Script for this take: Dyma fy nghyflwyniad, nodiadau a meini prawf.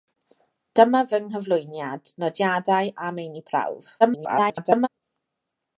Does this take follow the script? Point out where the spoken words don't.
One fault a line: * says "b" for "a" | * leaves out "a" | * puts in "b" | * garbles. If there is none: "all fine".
* garbles